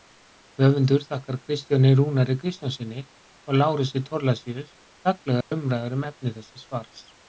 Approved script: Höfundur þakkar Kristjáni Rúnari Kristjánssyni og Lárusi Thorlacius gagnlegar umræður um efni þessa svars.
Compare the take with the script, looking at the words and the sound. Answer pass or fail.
fail